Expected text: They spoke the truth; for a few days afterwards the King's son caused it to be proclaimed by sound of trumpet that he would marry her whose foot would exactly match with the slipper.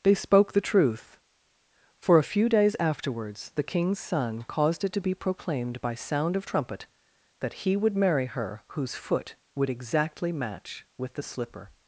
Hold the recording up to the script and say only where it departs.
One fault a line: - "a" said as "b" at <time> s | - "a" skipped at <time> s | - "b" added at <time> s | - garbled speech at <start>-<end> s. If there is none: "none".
none